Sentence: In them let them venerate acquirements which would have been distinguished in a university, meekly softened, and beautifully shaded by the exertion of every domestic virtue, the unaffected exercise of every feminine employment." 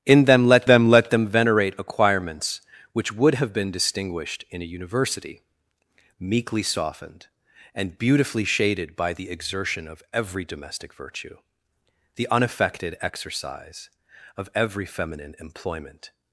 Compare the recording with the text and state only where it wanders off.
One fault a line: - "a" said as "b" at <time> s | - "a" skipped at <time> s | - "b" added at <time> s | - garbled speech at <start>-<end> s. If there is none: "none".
- "let them" added at 0.9 s